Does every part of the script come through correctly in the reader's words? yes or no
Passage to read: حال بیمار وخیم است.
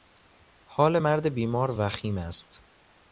no